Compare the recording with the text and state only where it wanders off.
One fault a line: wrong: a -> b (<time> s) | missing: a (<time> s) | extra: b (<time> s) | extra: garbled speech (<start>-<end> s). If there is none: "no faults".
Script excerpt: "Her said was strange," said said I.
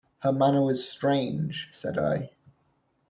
wrong: said -> manner (0.3 s)
missing: said (2.0 s)